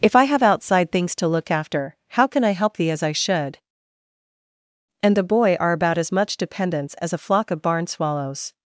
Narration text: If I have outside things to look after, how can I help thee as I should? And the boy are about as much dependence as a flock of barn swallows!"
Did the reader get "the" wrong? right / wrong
right